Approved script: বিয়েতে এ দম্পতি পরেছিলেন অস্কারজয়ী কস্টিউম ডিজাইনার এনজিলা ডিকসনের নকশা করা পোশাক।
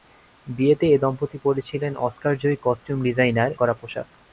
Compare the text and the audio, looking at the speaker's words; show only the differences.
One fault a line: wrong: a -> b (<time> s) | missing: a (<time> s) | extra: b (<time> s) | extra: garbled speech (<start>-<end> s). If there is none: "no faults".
missing: এনজিলা ডিকসনের নকশা (3.5 s)